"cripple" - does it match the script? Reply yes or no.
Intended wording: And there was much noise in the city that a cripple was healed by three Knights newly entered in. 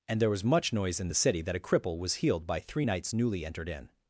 yes